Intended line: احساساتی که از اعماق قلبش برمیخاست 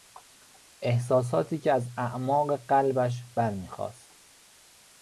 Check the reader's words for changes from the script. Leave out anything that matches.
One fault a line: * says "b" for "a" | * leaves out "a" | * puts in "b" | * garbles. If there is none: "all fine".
all fine